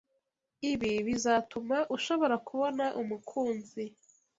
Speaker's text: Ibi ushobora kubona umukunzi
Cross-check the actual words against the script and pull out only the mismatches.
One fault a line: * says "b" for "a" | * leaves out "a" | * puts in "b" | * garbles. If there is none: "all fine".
* puts in "bizatuma"